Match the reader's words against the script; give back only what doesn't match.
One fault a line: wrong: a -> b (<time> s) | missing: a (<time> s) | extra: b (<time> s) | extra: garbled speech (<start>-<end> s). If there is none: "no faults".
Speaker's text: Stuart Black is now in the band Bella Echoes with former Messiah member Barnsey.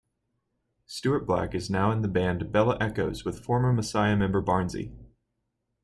no faults